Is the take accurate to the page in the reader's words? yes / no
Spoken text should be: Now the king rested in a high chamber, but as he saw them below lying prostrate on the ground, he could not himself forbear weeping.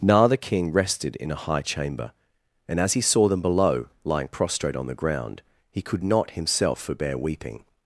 no